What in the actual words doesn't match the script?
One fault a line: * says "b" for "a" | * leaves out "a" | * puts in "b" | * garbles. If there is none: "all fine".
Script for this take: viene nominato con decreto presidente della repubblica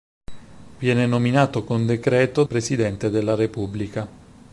all fine